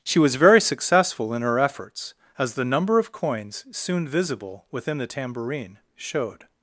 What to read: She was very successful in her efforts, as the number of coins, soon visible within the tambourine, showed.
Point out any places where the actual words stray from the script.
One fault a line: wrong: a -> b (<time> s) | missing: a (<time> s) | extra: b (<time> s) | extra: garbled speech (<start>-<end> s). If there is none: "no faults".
no faults